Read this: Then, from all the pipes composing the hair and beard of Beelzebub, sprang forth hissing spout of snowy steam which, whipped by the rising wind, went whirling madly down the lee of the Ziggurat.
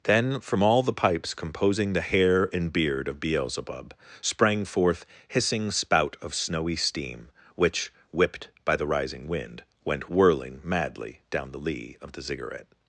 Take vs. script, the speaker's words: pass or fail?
pass